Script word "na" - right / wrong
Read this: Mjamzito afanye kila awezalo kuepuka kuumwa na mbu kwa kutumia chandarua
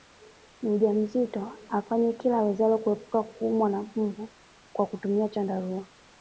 right